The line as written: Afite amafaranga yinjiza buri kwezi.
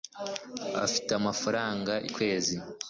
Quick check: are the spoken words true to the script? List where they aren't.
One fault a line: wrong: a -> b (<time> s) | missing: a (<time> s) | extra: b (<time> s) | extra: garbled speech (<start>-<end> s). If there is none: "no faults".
missing: yinjiza buri (1.9 s)